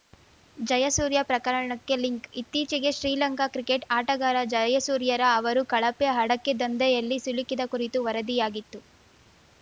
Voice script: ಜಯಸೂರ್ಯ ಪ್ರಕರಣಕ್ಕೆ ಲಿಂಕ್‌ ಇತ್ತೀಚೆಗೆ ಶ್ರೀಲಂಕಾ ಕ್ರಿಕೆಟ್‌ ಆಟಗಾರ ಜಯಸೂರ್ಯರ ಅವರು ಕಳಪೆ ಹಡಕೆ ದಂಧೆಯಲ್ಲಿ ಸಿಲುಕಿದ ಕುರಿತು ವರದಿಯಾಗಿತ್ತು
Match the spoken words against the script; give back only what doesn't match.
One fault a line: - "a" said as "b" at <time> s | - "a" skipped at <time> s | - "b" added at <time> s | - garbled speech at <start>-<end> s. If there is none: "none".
none